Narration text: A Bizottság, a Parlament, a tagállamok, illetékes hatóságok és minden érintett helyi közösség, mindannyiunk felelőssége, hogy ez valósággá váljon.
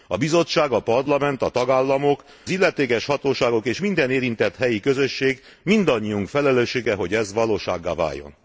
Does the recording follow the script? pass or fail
pass